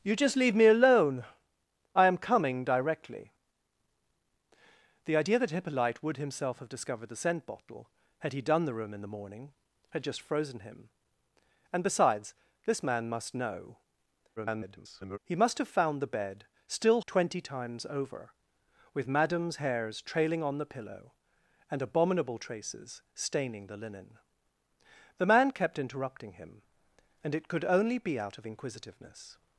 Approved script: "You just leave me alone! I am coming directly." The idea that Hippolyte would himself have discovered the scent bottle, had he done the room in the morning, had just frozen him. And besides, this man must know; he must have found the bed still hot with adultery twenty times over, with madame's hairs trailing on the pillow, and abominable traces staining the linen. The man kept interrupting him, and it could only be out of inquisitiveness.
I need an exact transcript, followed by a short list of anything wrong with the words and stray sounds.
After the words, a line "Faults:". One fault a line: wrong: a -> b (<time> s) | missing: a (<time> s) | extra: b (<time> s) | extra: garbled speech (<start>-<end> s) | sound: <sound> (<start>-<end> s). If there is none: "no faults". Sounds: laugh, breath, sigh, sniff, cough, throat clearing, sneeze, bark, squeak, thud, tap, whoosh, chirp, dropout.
"You just leave me alone! I am coming directly." The idea that Hippolyte would himself have discovered the scent bottle, had he done the room in the morning, had just frozen him. And besides, this man must know; [garbled] he must have found the bed still twenty times over, with madame's hairs trailing on the pillow, and abominable traces staining the linen. The man kept interrupting him, and it could only be out of inquisitiveness.
Faults:
extra: garbled speech (14.4-15.2 s)
missing: hot with adultery (17.0 s)